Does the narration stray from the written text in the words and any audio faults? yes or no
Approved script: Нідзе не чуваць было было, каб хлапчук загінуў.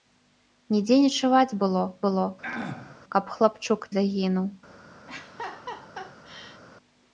yes